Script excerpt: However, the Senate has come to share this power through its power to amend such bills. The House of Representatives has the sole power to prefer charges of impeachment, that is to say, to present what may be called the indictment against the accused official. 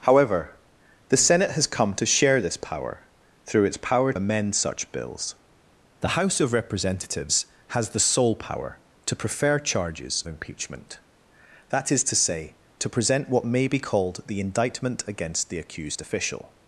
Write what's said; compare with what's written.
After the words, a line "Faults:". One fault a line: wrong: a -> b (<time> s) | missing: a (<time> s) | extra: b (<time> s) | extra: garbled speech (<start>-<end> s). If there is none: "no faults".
However, the Senate has come to share this power through its power amend such bills. The House of Representatives has the sole power to prefer charges impeachment, that is to say, to present what may be called the indictment against the accused official.
Faults:
missing: to (4.1 s)
missing: of (10.2 s)